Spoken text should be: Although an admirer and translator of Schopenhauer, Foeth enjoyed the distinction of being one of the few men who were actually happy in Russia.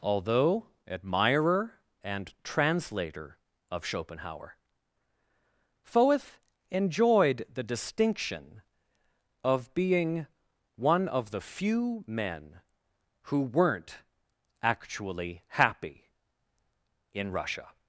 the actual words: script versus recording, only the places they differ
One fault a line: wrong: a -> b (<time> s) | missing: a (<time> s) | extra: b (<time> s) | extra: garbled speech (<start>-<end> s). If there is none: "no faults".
missing: an (0.7 s)
wrong: were -> weren't (13.4 s)